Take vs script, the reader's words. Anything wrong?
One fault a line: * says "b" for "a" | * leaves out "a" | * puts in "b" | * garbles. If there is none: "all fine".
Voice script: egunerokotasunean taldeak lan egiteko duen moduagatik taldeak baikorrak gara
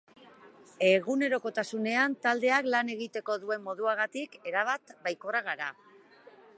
* says "erabat" for "taldeak"